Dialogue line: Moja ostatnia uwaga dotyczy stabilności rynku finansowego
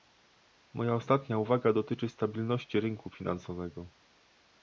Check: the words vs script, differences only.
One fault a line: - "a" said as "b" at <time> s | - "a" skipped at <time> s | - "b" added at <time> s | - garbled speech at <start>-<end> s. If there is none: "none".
none